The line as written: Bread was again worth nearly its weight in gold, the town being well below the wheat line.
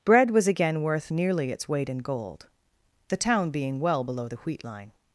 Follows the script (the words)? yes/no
yes